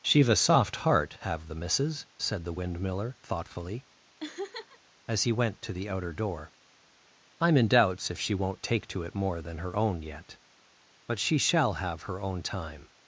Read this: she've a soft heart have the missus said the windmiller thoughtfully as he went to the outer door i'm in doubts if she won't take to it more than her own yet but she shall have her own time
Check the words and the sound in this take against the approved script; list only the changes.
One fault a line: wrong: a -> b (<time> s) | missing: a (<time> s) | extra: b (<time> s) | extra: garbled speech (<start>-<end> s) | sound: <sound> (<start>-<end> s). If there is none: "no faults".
sound: laugh (4.2-4.8 s)